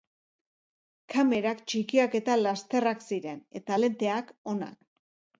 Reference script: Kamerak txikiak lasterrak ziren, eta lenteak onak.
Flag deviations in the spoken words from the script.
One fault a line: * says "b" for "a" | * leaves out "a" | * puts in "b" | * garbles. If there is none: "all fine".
* puts in "eta"